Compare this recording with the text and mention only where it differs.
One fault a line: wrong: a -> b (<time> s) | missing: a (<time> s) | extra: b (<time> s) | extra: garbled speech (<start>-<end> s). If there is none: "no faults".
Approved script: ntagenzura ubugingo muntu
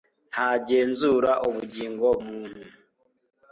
no faults